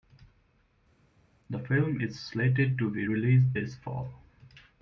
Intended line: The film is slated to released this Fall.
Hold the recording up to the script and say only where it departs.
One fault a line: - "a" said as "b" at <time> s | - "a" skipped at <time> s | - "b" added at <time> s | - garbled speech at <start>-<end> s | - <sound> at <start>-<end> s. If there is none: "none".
- "be" added at 2.9 s